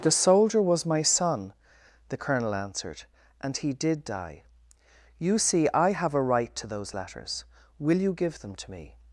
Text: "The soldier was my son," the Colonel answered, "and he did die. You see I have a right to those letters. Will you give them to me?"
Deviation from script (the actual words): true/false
false